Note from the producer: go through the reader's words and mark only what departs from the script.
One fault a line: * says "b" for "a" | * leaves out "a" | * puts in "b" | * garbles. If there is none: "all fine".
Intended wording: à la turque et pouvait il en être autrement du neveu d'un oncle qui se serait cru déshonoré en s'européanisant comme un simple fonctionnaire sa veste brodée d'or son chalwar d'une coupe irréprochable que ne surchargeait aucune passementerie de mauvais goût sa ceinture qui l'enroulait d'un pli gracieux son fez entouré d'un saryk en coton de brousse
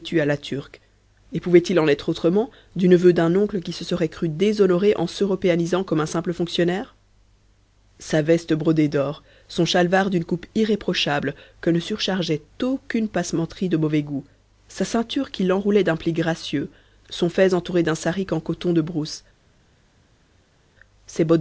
all fine